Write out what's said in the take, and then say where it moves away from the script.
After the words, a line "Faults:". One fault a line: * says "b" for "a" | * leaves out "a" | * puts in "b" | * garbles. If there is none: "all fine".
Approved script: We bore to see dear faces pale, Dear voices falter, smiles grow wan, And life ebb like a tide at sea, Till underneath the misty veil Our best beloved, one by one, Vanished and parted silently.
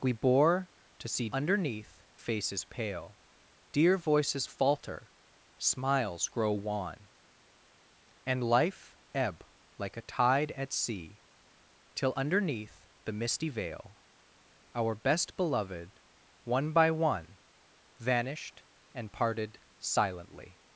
We bore to see underneath faces pale, Dear voices falter, smiles grow wan, And life ebb like a tide at sea, Till underneath the misty veil Our best beloved, one by one, Vanished and parted silently.
Faults:
* says "underneath" for "dear"